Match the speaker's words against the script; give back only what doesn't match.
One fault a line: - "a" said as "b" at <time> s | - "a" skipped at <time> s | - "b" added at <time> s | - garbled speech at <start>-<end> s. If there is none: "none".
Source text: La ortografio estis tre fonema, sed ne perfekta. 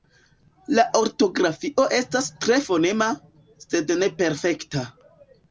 - "estis" said as "estas" at 2.0 s